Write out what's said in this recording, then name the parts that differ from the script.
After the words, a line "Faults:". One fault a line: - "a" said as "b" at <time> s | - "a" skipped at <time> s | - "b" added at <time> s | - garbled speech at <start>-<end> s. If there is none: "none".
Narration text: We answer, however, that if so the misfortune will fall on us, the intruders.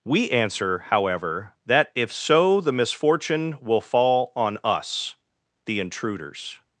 We answer, however, that if so the misfortune will fall on us, the intruders.
Faults:
none